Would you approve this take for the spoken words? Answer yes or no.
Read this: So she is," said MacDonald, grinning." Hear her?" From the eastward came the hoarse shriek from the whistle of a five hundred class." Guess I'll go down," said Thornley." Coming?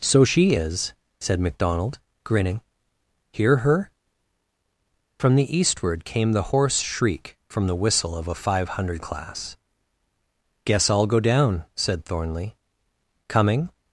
yes